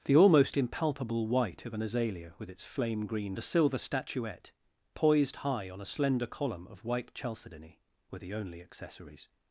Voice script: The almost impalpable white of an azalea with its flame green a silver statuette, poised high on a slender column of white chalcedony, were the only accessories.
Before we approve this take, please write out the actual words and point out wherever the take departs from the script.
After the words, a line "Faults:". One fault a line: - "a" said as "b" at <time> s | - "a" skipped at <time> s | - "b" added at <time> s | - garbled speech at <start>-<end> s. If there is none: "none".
The almost impalpable white of an azalea with its flame green a silver statuette, poised high on a slender column of white chalcedony, were the only accessories.
Faults:
none